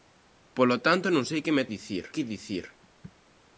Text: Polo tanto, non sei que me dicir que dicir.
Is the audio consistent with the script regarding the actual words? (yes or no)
yes